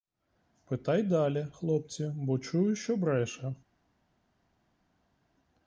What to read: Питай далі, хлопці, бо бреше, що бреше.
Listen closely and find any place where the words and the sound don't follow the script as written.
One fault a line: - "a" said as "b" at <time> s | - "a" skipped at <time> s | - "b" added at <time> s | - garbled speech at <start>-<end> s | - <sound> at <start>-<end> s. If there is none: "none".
- "бреше" said as "чую" at 2.4 s